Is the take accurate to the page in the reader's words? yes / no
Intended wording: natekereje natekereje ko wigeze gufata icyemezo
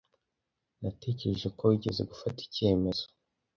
no